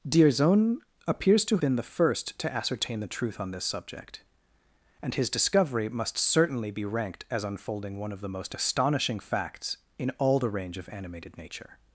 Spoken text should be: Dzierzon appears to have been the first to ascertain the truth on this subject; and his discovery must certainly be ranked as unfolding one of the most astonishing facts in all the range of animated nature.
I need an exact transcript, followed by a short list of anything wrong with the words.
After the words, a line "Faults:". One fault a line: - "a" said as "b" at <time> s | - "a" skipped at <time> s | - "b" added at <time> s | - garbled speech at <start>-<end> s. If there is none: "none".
Dzierzon appears to been the first to ascertain the truth on this subject; and his discovery must certainly be ranked as unfolding one of the most astonishing facts in all the range of animated nature.
Faults:
- "have" skipped at 1.6 s